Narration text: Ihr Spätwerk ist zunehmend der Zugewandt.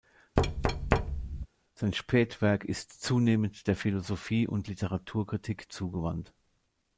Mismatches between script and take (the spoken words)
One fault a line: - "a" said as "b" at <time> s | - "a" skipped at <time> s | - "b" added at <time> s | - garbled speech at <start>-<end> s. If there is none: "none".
- "Ihr" said as "Sein" at 1.7 s
- "Philosophie und Literaturkritik" added at 3.7 s